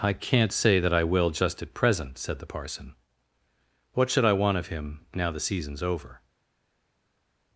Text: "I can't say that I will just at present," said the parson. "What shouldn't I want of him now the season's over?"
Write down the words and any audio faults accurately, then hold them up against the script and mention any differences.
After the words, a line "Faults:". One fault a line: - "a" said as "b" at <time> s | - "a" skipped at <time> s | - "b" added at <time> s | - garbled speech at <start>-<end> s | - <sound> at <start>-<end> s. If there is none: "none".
"I can't say that I will just at present," said the parson. "What should I want of him now the season's over?"
Faults:
- "shouldn't" said as "should" at 4.1 s